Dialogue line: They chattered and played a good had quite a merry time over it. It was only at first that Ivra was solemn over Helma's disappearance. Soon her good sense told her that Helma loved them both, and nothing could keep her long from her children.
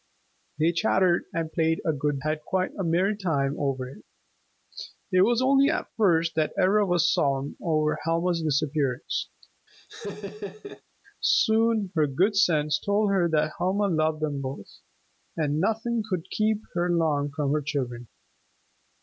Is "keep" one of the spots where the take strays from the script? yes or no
no